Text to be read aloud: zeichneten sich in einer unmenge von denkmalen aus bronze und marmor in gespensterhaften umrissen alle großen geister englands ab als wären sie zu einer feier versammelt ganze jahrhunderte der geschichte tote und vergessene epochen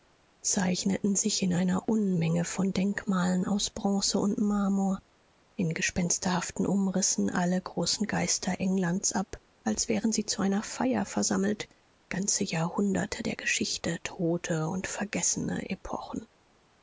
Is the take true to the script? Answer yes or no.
yes